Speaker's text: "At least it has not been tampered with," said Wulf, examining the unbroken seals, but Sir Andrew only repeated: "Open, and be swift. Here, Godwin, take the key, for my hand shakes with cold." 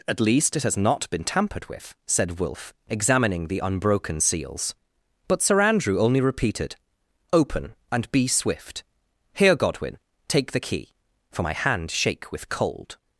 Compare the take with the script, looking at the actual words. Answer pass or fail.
fail